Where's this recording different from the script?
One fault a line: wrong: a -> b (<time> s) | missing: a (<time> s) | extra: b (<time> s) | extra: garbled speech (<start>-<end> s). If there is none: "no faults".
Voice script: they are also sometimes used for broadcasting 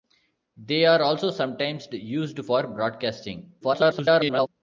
extra: garbled speech (3.6-4.5 s)